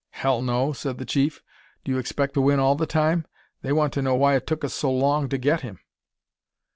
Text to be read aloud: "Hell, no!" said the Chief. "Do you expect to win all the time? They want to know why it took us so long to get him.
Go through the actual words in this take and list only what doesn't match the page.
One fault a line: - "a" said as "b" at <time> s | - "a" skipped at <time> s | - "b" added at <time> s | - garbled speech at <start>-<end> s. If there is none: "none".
none